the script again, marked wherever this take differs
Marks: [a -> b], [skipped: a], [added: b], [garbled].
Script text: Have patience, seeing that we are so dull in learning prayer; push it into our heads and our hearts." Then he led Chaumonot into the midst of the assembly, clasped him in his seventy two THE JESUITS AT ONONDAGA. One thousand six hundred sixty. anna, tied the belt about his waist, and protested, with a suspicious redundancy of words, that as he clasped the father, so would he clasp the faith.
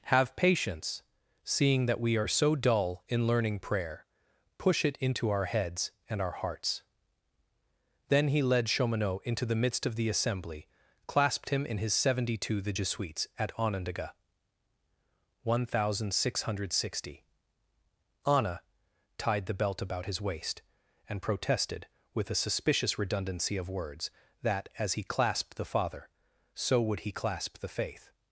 Have patience, seeing that we are so dull in learning prayer; push it into our heads and our hearts." Then he led Chaumonot into the midst of the assembly, clasped him in his seventy two THE JESUITS AT ONONDAGA. One thousand six hundred sixty. anna, tied the belt about his waist, and protested, with a suspicious redundancy of words, that as he clasped the father, so would he clasp the faith.